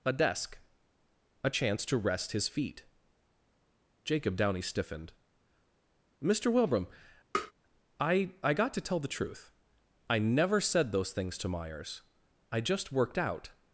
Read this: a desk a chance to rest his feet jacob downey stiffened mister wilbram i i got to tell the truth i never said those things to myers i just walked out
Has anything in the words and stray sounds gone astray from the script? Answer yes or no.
yes